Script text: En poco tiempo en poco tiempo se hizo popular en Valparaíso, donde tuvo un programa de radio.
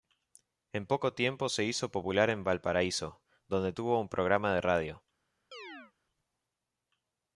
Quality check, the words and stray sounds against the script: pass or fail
fail